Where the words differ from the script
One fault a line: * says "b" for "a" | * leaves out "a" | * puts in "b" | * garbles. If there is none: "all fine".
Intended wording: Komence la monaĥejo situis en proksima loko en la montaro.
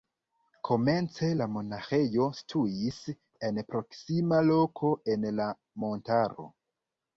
all fine